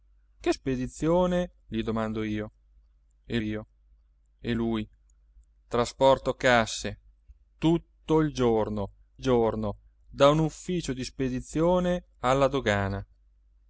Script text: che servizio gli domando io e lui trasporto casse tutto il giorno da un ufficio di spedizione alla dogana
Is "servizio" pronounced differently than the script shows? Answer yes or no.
yes